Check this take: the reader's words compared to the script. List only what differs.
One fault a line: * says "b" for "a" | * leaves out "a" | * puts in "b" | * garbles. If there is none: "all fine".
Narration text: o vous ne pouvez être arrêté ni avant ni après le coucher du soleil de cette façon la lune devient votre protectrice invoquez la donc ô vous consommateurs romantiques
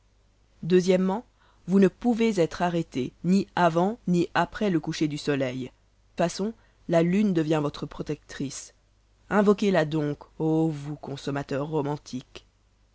* leaves out "de cette"